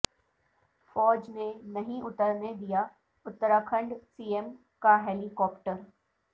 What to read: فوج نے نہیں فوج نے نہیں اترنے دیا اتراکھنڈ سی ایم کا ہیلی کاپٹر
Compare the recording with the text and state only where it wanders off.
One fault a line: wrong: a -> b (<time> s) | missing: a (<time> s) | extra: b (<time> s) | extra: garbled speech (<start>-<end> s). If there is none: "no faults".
missing: فوج نے نہیں (2.0 s)